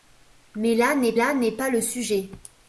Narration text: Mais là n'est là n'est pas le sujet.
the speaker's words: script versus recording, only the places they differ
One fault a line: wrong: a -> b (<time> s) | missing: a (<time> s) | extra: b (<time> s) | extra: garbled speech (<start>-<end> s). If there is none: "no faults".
no faults